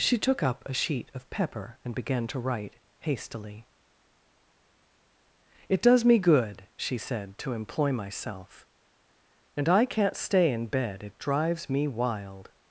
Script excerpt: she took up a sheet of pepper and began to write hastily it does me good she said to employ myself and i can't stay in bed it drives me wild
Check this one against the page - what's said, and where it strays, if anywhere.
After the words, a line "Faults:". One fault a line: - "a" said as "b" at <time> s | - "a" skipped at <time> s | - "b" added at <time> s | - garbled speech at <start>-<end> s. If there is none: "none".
she took up a sheet of pepper and began to write hastily it does me good she said to employ myself and i can't stay in bed it drives me wild
Faults:
none